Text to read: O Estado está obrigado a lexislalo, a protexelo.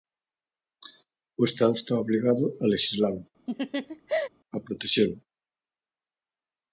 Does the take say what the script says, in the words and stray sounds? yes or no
no